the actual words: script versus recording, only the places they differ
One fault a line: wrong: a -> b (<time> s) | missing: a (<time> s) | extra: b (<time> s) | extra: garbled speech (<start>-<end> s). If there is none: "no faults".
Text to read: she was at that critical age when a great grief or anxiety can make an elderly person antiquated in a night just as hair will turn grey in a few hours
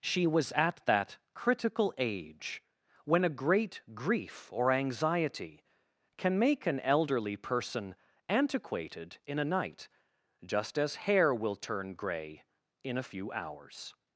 no faults